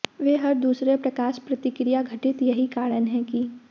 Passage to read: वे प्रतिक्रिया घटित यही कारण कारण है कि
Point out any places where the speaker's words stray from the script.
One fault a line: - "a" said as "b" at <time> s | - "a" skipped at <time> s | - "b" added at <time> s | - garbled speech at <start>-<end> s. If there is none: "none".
- "हर दूसरे प्रकाश" added at 0.4 s
- "कारण" skipped at 3.1 s